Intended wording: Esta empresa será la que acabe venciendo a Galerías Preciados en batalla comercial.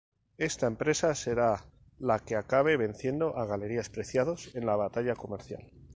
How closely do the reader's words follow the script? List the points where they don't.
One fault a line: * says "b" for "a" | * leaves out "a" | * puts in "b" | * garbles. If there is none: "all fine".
* puts in "la"